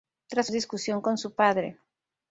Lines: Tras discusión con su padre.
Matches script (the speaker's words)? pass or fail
pass